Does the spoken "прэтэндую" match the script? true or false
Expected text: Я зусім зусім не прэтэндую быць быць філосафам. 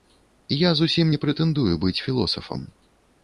true